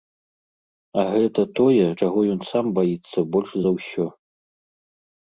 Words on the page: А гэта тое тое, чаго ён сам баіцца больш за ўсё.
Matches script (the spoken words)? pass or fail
fail